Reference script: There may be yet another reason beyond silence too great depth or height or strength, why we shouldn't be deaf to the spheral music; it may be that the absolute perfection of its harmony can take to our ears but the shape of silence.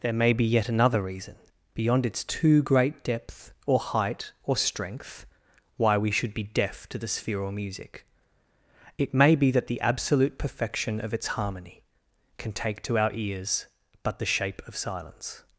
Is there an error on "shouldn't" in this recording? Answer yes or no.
yes